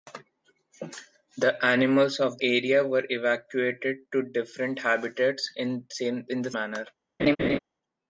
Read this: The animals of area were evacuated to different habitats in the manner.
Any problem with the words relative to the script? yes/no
no